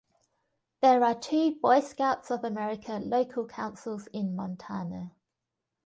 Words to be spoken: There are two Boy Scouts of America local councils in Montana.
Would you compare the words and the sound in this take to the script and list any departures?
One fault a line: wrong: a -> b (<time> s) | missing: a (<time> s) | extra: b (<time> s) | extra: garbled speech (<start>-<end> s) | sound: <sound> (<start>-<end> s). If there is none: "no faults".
no faults